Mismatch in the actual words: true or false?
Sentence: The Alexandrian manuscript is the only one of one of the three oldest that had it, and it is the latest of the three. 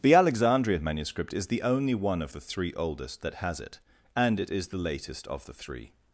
true